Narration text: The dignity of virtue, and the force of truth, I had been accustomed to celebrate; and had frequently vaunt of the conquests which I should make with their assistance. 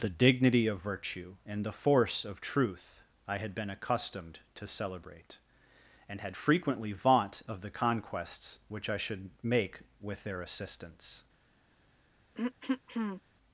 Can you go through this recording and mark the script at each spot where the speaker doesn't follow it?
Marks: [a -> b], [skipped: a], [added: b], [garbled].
The dignity of virtue, and the force of truth, I had been accustomed to celebrate; and had frequently vaunt of the conquests which I should make with their assistance.